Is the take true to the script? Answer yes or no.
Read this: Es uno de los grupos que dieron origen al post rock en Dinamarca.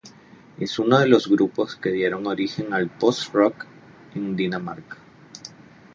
yes